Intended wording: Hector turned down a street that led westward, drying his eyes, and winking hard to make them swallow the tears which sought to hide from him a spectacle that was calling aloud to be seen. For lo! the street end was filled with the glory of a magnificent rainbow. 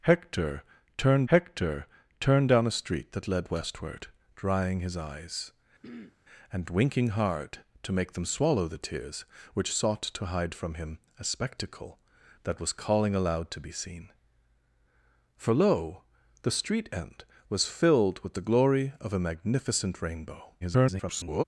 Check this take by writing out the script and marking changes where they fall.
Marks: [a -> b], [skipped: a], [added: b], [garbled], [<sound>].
Hector turned [added: hector turned] down a street that led westward, drying his eyes, [throat clearing] and winking hard to make them swallow the tears which sought to hide from him a spectacle that was calling aloud to be seen. For lo! the street end was filled with the glory of a magnificent rainbow. [garbled]